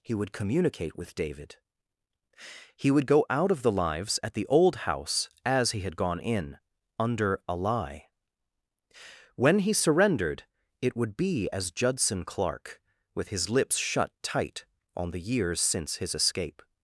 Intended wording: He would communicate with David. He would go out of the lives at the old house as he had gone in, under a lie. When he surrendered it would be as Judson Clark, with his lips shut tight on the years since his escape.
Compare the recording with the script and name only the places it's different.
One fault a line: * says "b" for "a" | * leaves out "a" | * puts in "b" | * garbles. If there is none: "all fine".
all fine